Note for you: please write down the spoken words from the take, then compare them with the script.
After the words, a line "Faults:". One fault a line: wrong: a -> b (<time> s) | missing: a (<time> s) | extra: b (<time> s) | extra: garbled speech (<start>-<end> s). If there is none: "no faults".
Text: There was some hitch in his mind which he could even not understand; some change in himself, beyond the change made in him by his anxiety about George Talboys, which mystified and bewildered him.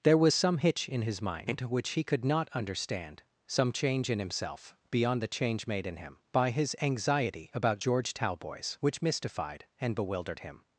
There was some hitch in his mind which he could not understand; some change in himself, beyond the change made in him by his anxiety about George Talboys, which mystified and bewildered him.
Faults:
missing: even (2.2 s)